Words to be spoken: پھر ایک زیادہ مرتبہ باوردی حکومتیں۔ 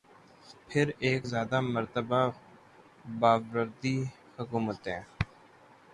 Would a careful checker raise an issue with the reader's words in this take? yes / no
no